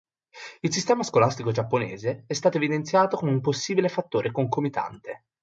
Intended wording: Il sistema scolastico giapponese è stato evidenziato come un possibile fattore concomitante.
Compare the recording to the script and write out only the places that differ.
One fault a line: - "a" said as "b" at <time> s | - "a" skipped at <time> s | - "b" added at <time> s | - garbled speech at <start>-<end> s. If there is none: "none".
none